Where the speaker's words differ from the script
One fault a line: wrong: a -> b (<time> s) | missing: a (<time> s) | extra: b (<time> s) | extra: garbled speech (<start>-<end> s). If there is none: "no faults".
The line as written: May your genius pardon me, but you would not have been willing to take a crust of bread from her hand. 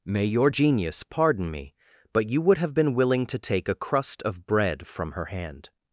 missing: not (2.6 s)